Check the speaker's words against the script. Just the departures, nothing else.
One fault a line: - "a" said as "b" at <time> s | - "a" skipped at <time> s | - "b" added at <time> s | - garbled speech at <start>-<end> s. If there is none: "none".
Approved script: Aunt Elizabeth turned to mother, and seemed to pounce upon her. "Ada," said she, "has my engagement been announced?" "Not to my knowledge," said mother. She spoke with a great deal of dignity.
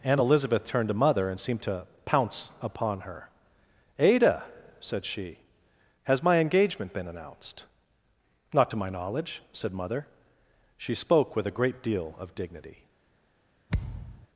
none